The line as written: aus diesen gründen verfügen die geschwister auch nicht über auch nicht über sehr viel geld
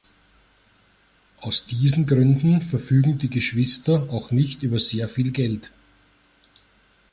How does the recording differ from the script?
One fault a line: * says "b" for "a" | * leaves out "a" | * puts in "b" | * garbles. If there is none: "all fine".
* leaves out "auch nicht über"